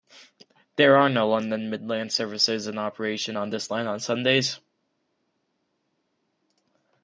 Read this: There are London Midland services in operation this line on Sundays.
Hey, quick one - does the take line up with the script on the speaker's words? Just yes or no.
no